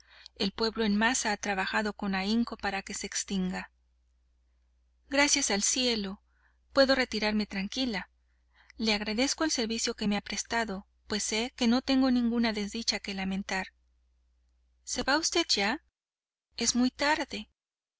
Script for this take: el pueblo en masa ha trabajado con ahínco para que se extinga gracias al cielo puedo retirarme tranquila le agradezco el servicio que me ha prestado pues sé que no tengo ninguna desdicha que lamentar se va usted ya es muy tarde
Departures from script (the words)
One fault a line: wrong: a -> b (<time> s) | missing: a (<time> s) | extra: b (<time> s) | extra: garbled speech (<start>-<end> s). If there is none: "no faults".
no faults